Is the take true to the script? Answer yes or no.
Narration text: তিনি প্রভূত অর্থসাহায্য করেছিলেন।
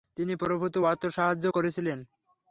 yes